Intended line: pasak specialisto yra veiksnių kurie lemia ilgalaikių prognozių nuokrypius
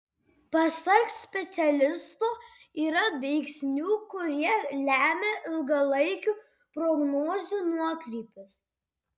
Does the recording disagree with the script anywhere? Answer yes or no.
no